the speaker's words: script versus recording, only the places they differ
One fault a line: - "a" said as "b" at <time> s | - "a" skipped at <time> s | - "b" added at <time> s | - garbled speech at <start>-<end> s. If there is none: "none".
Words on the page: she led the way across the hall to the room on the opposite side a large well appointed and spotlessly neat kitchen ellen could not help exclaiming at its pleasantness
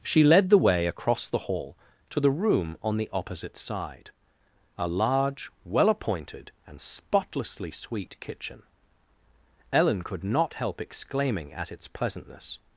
- "neat" said as "sweet" at 7.7 s